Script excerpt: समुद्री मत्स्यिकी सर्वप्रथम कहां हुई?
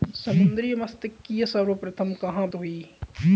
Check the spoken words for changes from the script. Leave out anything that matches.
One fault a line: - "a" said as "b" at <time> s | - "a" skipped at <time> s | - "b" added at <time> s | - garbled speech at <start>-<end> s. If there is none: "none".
none